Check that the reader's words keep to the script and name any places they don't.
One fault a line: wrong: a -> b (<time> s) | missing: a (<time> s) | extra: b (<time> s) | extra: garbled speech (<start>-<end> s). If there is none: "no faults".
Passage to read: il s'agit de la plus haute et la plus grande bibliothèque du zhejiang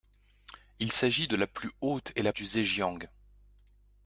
missing: plus grande bibliothèque (2.3 s)